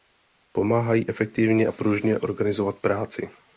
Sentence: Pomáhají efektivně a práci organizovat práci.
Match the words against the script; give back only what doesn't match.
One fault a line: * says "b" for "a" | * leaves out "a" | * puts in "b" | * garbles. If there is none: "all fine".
* says "pružně" for "práci"